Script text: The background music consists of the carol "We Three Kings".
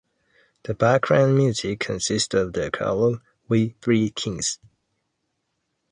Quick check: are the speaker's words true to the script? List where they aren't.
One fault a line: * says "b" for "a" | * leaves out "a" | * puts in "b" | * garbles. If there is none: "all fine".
all fine